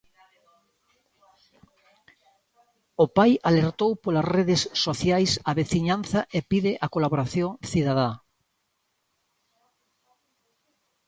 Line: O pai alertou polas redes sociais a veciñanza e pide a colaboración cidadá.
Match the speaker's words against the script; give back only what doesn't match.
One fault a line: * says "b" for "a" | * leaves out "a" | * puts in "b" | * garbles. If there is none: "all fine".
all fine